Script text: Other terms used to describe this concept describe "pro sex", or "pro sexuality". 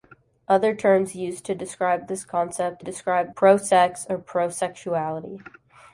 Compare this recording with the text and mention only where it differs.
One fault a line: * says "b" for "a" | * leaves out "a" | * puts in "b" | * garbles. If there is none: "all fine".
all fine